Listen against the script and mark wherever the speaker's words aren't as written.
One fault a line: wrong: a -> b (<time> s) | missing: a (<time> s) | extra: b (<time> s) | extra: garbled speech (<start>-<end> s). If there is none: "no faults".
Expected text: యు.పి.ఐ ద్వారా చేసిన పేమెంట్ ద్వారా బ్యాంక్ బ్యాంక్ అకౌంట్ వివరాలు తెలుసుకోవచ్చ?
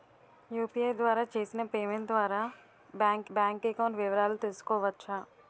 no faults